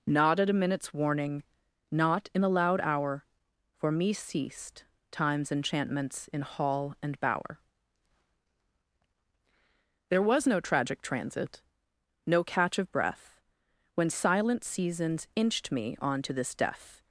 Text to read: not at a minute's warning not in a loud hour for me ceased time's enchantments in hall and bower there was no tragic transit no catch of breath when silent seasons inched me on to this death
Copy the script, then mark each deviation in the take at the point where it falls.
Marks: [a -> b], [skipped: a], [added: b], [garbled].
not at a minute's warning not in a loud hour for me ceased time's enchantments in hall and bower there was no tragic transit no catch of breath when silent seasons inched me on to this death